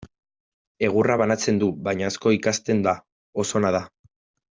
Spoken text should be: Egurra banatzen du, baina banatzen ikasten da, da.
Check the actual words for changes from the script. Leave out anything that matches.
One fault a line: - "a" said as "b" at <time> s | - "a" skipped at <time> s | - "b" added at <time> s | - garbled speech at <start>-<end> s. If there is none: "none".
- "banatzen" said as "asko" at 2.1 s
- "oso ona" added at 3.5 s